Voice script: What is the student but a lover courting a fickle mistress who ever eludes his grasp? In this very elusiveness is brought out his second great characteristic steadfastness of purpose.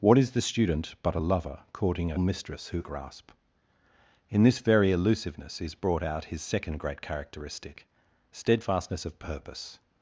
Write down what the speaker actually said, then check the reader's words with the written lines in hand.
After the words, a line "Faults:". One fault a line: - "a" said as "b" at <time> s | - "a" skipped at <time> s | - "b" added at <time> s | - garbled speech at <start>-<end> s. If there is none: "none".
What is the student but a lover courting a mistress who grasp? In this very elusiveness is brought out his second great characteristic steadfastness of purpose.
Faults:
- "fickle" skipped at 2.2 s
- "ever eludes his" skipped at 2.9 s